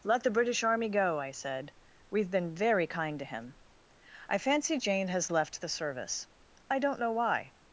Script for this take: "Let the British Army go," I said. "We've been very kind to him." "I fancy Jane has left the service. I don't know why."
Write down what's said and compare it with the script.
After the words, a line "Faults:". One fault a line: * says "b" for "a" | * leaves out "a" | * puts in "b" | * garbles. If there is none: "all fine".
"Let the British Army go," I said. "We've been very kind to him." "I fancy Jane has left the service. I don't know why."
Faults:
all fine